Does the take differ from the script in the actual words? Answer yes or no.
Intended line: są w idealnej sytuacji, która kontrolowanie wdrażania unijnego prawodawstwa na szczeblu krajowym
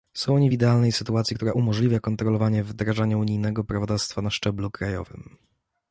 yes